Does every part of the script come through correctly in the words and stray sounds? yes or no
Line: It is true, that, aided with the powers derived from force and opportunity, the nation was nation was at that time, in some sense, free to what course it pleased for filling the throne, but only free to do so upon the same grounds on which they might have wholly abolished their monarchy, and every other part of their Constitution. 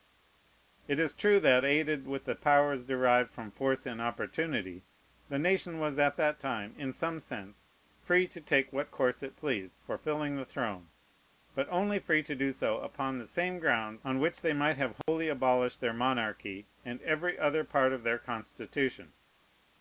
no